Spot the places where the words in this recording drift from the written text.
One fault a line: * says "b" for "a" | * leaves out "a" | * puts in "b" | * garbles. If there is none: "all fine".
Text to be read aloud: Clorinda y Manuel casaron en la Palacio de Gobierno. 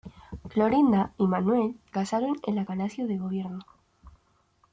all fine